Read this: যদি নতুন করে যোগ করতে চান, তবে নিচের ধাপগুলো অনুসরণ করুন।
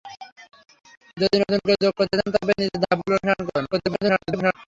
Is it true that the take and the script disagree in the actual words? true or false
true